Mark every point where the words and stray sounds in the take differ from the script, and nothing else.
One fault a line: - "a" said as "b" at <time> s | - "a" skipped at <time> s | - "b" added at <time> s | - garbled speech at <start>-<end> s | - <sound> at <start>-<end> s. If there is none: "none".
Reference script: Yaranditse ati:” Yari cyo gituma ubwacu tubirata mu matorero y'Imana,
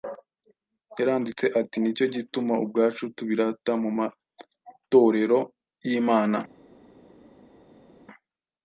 - "Yari" said as "Ni" at 1.8 s